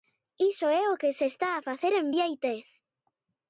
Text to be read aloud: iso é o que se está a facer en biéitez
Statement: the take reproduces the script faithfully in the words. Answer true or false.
true